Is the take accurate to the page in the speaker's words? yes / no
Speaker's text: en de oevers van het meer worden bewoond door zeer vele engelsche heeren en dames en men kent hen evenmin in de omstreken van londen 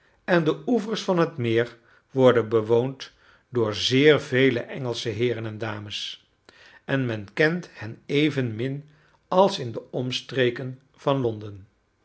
no